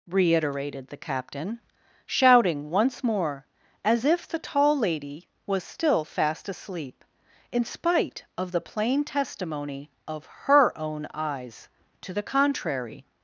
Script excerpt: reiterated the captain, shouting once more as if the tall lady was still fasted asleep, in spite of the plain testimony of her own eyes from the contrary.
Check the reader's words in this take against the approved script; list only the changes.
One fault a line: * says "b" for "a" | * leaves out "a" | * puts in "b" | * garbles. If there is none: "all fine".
* says "fast" for "fasted"
* says "to" for "from"